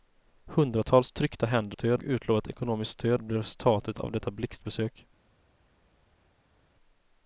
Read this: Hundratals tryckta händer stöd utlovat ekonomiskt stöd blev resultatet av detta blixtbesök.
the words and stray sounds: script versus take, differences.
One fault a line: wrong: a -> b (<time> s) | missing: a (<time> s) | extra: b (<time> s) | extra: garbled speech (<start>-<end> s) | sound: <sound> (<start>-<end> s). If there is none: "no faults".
no faults